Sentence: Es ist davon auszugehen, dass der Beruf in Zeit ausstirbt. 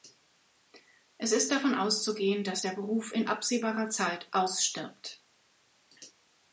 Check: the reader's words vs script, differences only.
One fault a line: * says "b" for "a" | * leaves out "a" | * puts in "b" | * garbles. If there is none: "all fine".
* puts in "absehbarer"